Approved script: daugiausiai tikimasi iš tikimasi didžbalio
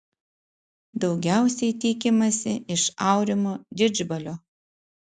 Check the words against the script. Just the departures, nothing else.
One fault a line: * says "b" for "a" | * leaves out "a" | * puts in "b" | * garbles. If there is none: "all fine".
* says "aurimo" for "tikimasi"